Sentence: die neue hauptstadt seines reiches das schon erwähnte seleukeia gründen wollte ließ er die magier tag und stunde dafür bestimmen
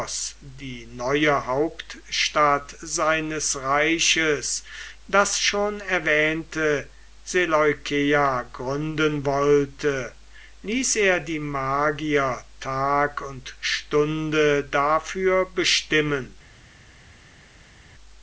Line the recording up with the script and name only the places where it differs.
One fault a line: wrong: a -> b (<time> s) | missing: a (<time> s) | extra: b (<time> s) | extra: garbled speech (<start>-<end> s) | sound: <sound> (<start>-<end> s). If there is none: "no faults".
no faults